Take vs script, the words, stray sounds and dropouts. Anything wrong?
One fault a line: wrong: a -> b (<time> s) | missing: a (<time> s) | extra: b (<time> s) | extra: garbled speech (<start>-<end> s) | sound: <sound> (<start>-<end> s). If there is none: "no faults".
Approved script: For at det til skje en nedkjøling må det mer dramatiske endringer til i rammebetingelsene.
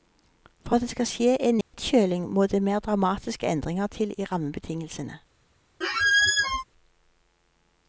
wrong: til -> skal (0.9 s)
sound: dropout (1.6-1.7 s)
sound: squeak (5.8-6.6 s)